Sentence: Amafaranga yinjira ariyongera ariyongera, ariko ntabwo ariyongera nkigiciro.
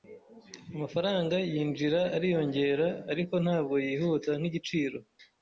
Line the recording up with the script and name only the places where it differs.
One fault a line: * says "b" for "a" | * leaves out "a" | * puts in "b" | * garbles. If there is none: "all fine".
* leaves out "ariyongera"
* says "yihuta" for "ariyongera"